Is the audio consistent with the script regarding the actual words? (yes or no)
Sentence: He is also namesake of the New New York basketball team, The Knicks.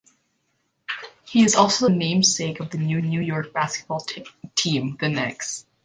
yes